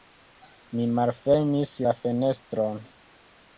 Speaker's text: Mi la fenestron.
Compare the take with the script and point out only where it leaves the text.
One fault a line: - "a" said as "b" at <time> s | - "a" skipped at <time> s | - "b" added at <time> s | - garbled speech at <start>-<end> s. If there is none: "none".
- "malfermis" added at 1.0 s